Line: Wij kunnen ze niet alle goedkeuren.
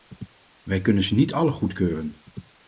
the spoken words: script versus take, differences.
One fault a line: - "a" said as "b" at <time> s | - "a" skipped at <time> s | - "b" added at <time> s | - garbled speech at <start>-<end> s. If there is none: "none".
none